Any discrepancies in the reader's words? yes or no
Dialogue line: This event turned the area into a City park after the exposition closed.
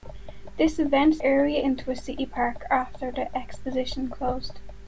yes